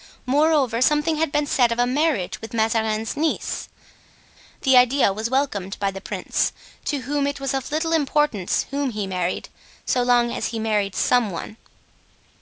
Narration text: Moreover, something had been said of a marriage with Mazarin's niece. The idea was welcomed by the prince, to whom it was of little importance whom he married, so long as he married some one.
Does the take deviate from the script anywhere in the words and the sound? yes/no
no